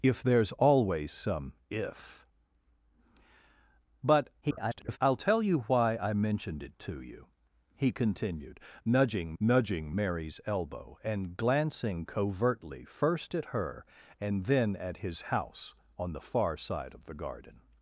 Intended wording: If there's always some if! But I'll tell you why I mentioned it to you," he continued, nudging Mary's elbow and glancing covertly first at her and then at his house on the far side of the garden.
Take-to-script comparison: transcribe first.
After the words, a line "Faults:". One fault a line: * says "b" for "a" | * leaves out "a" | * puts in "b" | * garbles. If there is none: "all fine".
If there's always some if! But [garbled] I'll tell you why I mentioned it to you," he continued, nudging nudging Mary's elbow and glancing covertly first at her and then at his house on the far side of the garden.
Faults:
* garbles
* puts in "nudging"